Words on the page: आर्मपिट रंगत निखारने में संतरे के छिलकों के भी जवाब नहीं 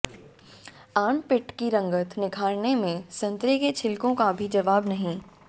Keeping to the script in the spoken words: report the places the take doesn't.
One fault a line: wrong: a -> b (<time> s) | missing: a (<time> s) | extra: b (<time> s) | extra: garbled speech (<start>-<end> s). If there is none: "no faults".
extra: की (1.5 s)
wrong: के -> का (4.2 s)